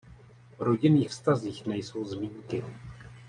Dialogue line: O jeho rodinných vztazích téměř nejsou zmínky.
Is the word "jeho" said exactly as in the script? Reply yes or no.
no